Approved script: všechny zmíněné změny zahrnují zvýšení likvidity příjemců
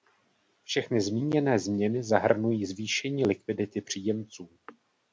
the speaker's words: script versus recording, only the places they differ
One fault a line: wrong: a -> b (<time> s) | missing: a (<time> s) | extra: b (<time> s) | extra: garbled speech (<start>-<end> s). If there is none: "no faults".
no faults